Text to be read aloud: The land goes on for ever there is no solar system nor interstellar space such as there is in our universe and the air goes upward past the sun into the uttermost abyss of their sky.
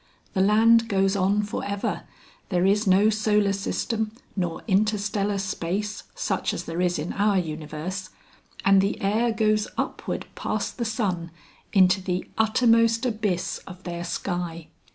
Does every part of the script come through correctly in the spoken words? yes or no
yes